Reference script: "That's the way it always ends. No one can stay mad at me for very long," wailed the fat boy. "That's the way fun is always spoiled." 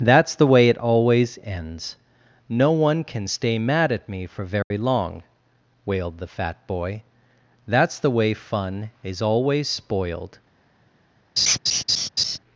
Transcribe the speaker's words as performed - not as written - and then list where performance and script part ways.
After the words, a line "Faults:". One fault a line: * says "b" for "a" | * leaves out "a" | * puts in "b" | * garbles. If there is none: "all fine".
"That's the way it always ends. No one can stay mad at me for very long," wailed the fat boy. "That's the way fun is always spoiled."
Faults:
all fine